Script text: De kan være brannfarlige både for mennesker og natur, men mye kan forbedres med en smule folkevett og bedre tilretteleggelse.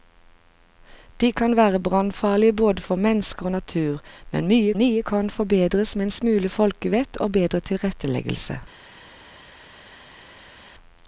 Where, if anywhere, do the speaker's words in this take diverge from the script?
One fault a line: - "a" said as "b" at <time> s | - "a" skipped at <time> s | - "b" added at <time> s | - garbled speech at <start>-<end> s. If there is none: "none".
- "mye" added at 4.8 s